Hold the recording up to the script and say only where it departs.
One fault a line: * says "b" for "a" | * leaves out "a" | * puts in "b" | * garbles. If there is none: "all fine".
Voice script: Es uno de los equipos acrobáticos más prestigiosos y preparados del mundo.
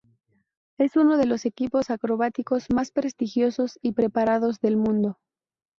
all fine